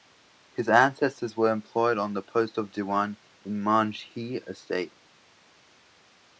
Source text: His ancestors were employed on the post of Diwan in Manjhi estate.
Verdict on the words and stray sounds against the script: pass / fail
pass